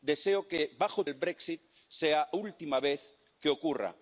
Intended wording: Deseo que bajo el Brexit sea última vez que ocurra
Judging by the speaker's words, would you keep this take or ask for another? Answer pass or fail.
pass